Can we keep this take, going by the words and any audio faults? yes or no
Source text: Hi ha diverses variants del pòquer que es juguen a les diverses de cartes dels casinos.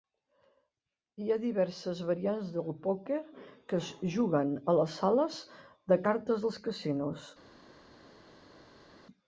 no